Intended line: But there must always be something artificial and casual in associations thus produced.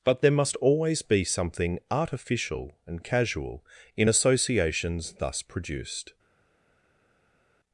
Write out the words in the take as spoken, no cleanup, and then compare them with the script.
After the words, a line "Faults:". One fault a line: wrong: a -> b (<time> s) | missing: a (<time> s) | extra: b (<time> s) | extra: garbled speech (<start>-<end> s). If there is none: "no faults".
But there must always be something artificial and casual in associations thus produced.
Faults:
no faults